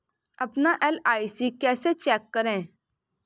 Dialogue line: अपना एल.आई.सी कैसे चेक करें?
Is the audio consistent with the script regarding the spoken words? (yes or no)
yes